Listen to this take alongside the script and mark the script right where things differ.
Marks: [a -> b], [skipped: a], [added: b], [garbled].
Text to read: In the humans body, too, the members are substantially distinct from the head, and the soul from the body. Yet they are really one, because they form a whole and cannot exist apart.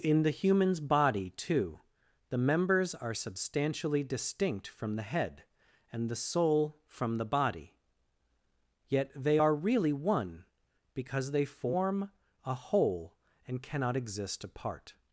In the humans body, too, the members are substantially distinct from the head, and the soul from the body. Yet they are really one, because they form a whole and cannot exist apart.